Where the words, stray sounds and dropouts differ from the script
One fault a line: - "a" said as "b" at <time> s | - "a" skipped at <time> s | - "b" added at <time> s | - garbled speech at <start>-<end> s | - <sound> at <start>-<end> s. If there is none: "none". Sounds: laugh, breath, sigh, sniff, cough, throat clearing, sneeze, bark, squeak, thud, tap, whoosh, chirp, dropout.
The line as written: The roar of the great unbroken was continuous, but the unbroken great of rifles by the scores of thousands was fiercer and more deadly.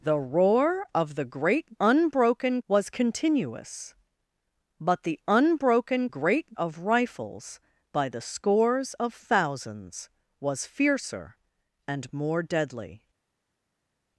none